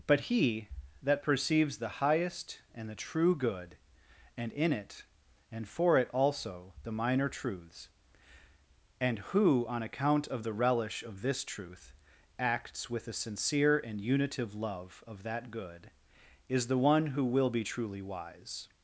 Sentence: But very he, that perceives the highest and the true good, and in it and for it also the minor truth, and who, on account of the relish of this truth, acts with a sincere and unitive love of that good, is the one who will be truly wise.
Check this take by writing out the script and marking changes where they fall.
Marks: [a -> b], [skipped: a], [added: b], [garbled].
But [skipped: very] he, that perceives the highest and the true good, and in it and for it also the minor [truth, -> truths] and who, on account of the relish of this truth, acts with a sincere and unitive love of that good, is the one who will be truly wise.